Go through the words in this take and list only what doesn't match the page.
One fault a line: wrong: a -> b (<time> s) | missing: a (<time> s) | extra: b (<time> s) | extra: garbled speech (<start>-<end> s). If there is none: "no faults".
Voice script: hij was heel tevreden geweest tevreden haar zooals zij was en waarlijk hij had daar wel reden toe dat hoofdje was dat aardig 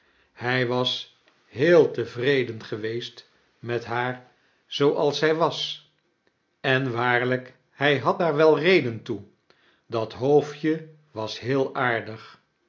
wrong: tevreden -> met (3.6 s)
wrong: dat -> heel (11.4 s)